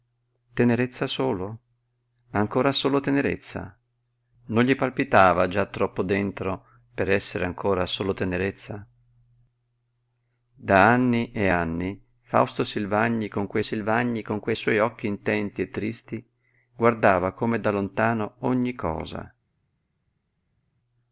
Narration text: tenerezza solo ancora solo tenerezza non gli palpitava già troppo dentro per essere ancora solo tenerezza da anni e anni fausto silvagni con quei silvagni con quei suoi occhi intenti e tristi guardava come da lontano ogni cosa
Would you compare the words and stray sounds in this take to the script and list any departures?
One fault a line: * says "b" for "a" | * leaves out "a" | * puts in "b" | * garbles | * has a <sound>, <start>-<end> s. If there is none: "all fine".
all fine